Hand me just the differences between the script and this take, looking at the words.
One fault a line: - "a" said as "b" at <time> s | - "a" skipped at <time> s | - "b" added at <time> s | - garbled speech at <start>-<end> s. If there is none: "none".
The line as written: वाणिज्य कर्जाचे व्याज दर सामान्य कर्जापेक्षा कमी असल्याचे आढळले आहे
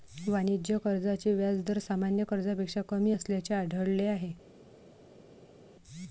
none